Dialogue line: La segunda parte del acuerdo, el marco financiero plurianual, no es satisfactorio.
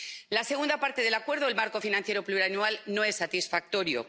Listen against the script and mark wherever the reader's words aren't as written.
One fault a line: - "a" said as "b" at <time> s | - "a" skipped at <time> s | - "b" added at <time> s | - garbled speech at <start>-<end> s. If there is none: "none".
none